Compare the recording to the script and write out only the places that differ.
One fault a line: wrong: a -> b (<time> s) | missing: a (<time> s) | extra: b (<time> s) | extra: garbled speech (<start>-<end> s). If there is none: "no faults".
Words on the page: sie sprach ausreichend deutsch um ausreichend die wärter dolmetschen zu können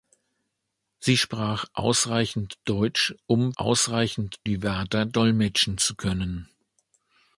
no faults